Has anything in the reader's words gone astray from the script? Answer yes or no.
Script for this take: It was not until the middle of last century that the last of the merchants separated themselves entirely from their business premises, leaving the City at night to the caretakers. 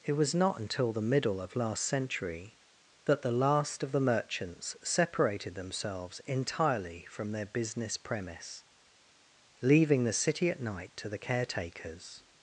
yes